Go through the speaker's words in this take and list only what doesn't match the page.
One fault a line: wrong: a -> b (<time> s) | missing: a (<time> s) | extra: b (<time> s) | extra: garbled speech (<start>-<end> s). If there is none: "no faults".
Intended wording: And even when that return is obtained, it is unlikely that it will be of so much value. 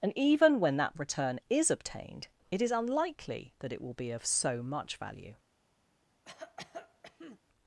no faults